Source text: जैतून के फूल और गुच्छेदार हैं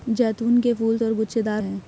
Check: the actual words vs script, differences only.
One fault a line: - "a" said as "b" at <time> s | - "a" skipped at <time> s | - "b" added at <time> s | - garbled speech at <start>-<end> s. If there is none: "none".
none